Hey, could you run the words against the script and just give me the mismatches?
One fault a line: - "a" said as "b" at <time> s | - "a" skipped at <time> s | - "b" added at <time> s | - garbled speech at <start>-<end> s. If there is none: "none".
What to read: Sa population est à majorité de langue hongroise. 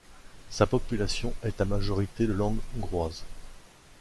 none